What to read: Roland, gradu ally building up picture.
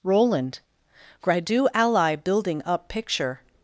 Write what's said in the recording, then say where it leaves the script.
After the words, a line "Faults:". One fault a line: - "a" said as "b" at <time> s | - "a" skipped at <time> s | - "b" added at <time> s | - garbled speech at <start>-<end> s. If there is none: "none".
Roland, gradu ally building up picture.
Faults:
none